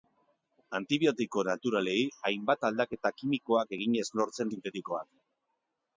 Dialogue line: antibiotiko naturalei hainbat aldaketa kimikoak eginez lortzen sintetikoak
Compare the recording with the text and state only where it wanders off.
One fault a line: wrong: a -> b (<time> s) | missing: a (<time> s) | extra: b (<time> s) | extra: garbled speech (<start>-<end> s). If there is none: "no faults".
no faults